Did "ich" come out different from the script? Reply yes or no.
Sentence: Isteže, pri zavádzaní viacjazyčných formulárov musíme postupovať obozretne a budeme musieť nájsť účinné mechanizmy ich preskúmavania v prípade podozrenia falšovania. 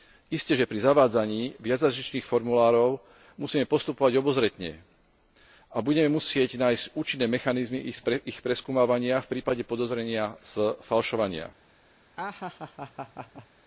no